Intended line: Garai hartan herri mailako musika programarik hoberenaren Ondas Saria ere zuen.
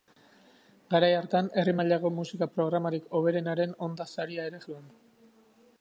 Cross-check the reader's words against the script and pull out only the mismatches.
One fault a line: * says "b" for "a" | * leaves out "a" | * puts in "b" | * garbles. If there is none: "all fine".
all fine